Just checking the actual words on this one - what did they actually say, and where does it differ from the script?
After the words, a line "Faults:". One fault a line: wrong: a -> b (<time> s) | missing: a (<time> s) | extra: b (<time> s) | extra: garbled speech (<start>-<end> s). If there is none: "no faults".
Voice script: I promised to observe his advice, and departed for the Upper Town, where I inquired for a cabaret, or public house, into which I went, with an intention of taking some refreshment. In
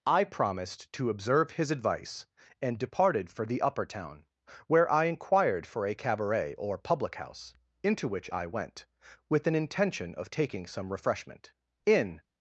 I promised to observe his advice, and departed for the Upper Town, where I inquired for a cabaret, or public house, into which I went, with an intention of taking some refreshment. In
Faults:
no faults